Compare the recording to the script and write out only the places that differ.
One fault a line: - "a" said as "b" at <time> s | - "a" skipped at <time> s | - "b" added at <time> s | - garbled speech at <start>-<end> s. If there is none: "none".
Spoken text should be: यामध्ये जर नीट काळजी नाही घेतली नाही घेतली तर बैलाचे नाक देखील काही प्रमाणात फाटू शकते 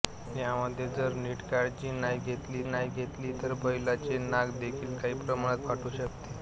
none